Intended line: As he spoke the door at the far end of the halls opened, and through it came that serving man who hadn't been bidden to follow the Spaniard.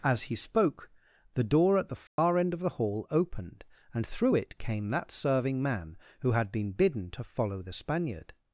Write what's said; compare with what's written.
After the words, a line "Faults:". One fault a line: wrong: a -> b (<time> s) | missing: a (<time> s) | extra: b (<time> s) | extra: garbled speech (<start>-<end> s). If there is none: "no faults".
As he spoke the door at the far end of the hall opened, and through it came that serving man who had been bidden to follow the Spaniard.
Faults:
wrong: halls -> hall (2.7 s)
wrong: hadn't -> had (6.3 s)